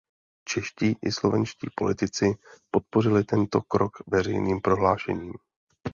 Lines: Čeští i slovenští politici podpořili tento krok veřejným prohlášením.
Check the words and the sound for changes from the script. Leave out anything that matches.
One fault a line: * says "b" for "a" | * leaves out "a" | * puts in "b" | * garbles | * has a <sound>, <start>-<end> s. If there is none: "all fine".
all fine